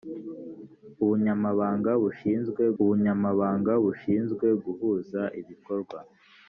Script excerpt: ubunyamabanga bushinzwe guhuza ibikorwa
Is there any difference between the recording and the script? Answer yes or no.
yes